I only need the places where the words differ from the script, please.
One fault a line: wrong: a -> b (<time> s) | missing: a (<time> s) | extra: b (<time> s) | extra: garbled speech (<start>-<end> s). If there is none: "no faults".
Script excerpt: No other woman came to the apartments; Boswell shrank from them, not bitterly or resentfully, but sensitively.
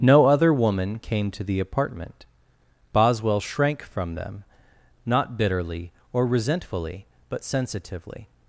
wrong: apartments -> apartment (1.6 s)